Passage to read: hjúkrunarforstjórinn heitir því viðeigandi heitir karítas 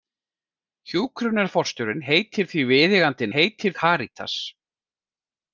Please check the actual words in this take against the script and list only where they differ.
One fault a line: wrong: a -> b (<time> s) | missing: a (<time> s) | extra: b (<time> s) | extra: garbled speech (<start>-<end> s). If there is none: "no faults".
no faults